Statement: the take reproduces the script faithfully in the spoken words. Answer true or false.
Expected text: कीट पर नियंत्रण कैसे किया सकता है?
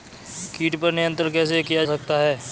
true